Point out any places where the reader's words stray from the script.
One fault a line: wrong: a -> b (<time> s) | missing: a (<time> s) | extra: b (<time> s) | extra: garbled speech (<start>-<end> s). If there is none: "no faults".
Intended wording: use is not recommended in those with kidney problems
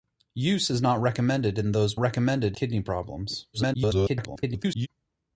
wrong: with -> recommended (2.0 s)
extra: garbled speech (3.5-4.9 s)